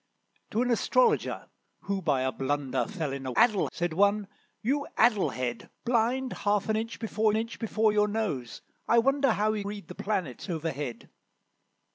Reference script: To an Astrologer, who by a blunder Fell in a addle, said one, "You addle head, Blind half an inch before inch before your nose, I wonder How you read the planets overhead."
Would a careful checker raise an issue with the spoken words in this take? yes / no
no